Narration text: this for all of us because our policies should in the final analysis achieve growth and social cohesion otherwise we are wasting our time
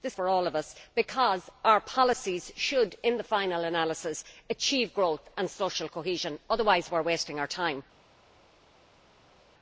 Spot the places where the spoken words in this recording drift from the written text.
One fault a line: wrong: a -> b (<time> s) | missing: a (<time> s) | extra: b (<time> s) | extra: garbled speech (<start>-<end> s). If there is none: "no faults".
no faults